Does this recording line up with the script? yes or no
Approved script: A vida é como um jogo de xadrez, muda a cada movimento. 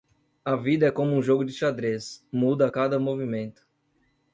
yes